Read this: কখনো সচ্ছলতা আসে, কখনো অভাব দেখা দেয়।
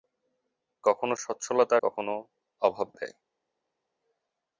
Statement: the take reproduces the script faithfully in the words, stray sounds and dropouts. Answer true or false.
false